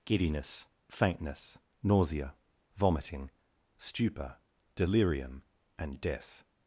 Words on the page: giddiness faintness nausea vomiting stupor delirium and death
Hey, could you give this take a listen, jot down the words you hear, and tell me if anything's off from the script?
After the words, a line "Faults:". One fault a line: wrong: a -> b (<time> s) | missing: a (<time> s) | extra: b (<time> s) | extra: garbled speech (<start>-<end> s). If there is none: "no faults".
giddiness faintness nausea vomiting stupor delirium and death
Faults:
no faults